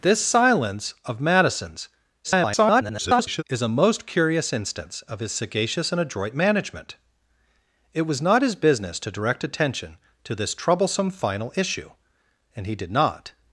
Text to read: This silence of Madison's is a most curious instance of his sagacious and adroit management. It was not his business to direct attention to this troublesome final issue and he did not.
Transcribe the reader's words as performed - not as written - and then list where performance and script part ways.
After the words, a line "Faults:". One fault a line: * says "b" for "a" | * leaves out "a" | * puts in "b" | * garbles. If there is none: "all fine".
This silence of Madison's [garbled] is a most curious instance of his sagacious and adroit management. It was not his business to direct attention to this troublesome final issue and he did not.
Faults:
* garbles